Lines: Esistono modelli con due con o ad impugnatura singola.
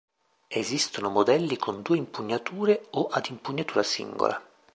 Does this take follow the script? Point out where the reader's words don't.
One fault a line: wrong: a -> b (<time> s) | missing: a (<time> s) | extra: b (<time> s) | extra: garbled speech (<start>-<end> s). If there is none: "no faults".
wrong: con -> impugnature (2.0 s)